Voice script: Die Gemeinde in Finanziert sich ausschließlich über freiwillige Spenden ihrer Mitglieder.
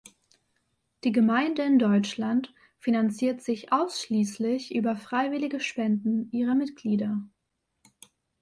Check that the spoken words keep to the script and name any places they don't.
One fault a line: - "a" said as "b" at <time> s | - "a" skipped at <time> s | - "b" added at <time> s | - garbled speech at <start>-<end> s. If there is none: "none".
- "Deutschland" added at 1.8 s